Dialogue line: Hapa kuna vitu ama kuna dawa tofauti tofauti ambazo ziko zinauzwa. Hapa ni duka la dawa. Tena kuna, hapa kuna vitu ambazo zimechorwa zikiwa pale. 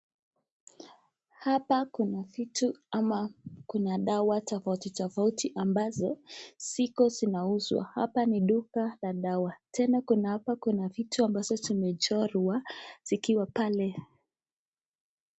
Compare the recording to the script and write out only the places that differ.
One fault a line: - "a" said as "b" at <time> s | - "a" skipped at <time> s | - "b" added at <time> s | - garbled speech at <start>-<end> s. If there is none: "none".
none